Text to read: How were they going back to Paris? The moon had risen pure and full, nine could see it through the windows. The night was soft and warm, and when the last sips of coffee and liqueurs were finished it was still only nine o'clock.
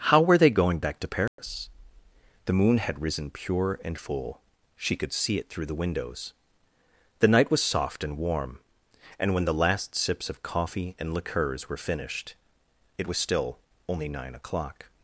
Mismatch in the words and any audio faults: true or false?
true